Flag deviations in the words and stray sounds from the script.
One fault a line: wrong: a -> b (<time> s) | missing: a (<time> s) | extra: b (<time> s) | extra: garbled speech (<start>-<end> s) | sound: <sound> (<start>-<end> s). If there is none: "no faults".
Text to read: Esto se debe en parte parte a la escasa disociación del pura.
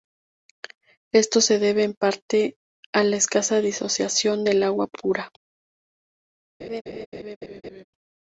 missing: parte (2.5 s)
extra: agua (4.6 s)
sound: laugh (6.6-7.8 s)